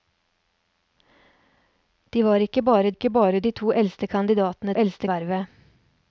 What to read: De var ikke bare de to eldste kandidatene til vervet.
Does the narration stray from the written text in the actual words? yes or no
yes